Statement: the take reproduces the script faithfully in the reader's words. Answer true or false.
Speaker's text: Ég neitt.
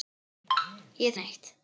true